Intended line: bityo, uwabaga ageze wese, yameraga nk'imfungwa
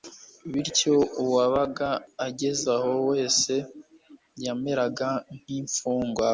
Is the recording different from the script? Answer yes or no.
yes